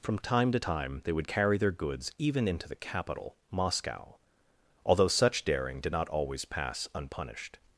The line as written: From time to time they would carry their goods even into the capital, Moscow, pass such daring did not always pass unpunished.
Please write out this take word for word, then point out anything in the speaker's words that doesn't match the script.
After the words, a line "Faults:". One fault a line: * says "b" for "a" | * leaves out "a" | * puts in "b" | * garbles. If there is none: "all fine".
From time to time they would carry their goods even into the capital, Moscow, although such daring did not always pass unpunished.
Faults:
* says "although" for "pass"